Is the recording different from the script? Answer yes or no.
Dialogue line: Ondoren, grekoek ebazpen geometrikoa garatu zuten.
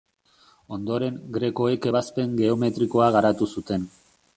no